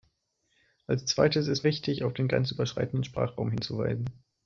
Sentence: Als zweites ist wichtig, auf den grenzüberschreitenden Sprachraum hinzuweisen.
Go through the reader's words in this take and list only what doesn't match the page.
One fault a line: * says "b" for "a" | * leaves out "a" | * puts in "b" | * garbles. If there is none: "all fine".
all fine